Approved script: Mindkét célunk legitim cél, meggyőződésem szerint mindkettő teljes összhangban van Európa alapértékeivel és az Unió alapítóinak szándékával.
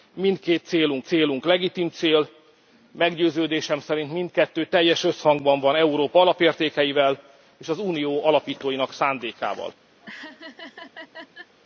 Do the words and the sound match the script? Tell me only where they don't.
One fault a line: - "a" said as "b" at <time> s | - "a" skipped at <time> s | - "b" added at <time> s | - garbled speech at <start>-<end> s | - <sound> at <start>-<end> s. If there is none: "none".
- "célunk" added at 1.0 s
- laugh at 10.0-11.5 s